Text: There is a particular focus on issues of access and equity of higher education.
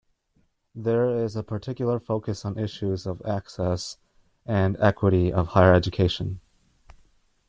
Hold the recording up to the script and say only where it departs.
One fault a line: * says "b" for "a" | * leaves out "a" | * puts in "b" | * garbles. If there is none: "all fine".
all fine